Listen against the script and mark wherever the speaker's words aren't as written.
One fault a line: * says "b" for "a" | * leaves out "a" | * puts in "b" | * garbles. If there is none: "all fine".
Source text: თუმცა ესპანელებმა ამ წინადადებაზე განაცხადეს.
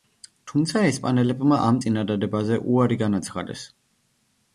* puts in "უარი"